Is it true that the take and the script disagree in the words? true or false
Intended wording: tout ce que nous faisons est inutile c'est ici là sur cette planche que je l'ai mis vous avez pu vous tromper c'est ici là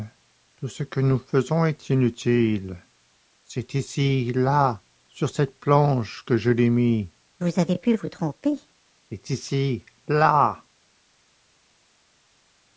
false